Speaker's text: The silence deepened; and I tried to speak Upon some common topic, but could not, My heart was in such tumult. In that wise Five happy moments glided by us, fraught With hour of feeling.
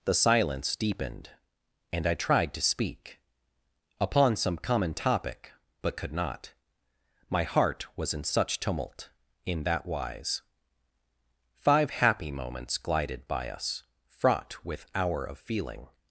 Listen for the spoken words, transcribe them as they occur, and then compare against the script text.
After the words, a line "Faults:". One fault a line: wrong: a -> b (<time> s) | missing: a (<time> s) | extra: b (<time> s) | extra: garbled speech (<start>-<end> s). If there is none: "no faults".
The silence deepened; and I tried to speak Upon some common topic, but could not, My heart was in such tumult. In that wise Five happy moments glided by us, fraught With hour of feeling.
Faults:
no faults